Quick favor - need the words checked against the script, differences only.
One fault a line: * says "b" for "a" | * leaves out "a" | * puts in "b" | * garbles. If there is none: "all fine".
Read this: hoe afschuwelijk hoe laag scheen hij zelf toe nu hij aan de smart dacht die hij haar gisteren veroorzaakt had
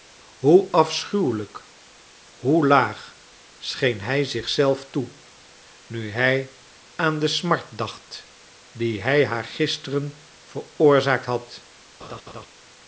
* puts in "zich"